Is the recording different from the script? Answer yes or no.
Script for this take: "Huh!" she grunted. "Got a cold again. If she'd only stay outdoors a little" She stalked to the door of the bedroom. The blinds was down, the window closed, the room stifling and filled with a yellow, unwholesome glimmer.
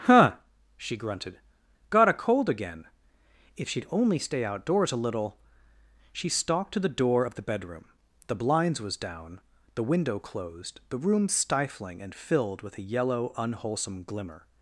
no